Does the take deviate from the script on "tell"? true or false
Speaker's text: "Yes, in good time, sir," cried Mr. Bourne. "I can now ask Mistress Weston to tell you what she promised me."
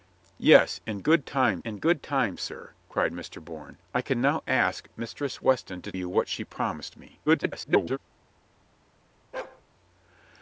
true